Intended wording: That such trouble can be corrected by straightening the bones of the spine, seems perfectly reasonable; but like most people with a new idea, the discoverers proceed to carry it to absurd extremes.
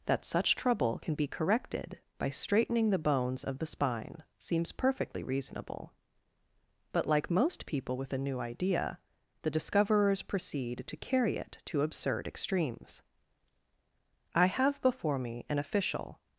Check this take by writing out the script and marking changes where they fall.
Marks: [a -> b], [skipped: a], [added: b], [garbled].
That such trouble can be corrected by straightening the bones of the spine, seems perfectly reasonable; but like most people with a new idea, the discoverers proceed to carry it to absurd extremes. [added: I have before me an official]